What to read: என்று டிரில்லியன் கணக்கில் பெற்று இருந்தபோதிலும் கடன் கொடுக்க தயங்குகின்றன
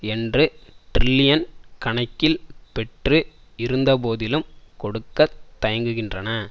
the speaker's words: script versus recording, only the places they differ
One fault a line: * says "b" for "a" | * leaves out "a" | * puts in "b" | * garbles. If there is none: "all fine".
* leaves out "கடன்"